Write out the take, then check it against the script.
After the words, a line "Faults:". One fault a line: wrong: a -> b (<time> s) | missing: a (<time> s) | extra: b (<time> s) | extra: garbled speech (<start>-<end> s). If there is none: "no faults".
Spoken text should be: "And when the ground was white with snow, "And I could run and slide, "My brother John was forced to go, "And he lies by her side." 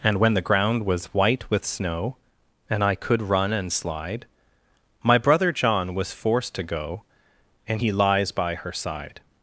"And when the ground was white with snow, "And I could run and slide, "My brother John was forced to go, "And he lies by her side."
Faults:
no faults